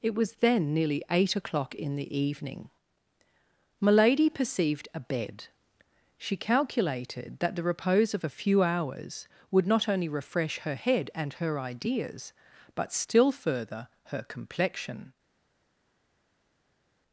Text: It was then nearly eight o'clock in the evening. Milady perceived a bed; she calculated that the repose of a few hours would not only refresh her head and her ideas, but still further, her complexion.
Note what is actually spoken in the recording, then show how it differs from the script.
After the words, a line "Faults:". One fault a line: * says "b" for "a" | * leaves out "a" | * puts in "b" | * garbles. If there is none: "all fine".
It was then nearly eight o'clock in the evening. Milady perceived a bed; she calculated that the repose of a few hours would not only refresh her head and her ideas, but still further, her complexion.
Faults:
all fine